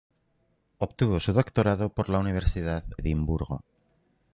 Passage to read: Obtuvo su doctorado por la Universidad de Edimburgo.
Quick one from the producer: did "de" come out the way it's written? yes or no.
no